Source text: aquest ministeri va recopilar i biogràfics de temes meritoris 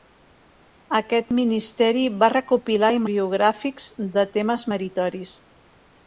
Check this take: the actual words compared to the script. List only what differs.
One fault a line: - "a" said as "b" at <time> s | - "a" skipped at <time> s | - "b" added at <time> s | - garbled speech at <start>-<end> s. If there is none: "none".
none